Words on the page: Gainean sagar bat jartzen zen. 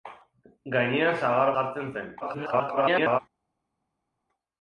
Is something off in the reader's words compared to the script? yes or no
yes